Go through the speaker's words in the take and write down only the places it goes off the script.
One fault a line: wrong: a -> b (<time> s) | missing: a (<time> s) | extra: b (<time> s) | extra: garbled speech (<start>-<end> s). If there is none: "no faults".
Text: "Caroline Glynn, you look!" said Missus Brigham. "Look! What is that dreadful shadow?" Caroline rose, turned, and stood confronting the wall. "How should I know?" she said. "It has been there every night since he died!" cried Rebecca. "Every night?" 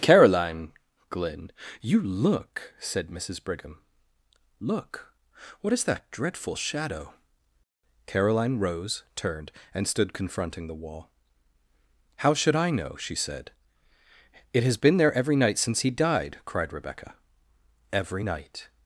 no faults